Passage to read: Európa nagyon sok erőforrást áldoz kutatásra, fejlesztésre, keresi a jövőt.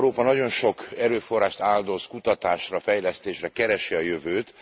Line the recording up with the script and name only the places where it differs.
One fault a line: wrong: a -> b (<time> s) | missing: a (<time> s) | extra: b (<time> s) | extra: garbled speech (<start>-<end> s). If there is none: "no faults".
no faults